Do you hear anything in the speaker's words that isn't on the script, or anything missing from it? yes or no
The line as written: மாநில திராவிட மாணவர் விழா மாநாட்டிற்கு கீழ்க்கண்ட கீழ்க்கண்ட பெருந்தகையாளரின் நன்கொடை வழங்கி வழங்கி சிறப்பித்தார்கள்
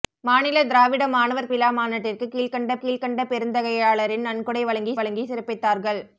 no